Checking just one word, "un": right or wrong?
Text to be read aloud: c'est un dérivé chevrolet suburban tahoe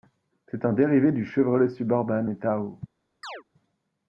right